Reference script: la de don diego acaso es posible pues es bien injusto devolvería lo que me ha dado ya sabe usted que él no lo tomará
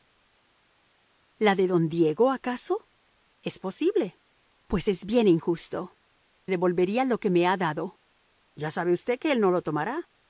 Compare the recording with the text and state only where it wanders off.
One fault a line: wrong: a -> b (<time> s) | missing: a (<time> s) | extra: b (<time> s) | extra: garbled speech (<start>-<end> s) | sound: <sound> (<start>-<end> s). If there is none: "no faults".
no faults